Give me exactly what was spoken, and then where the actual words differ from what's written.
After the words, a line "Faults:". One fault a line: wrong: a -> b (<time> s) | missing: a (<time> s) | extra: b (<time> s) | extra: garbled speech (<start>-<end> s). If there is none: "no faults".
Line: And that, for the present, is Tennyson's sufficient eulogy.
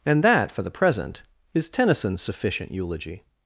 And that, for the present, is Tennyson's sufficient eulogy.
Faults:
no faults